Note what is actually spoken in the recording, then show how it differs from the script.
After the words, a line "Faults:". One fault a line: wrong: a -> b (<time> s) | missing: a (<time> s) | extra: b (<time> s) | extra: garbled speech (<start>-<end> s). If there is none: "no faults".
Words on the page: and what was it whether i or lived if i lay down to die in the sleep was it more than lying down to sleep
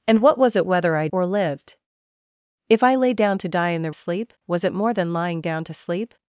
and what was it whether i or lived if i lay down to die in the sleep was it more than lying down to sleep
Faults:
no faults